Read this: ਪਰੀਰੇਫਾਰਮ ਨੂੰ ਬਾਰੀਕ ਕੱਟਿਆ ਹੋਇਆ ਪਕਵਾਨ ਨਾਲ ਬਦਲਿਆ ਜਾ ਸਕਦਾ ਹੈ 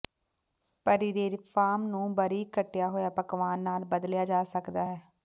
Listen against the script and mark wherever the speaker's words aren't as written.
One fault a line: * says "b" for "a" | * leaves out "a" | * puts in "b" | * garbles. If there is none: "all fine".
all fine